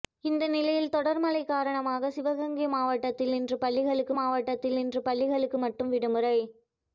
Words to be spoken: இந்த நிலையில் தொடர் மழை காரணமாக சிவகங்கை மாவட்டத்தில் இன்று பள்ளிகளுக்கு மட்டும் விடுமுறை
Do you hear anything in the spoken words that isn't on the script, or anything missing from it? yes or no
yes